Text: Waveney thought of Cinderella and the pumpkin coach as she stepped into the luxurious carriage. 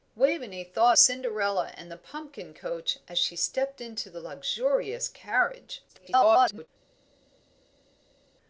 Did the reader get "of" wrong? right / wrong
wrong